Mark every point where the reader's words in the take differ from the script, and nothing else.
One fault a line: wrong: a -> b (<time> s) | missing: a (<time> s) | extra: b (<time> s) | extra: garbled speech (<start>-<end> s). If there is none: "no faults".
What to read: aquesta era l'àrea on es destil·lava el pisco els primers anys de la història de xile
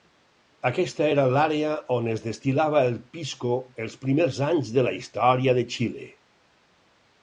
no faults